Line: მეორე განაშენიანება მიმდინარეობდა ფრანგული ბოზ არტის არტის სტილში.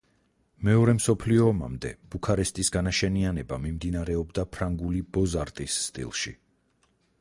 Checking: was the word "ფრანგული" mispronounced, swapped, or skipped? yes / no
no